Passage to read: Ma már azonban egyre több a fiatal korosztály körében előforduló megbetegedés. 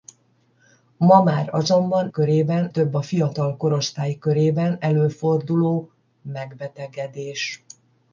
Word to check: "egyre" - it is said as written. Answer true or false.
false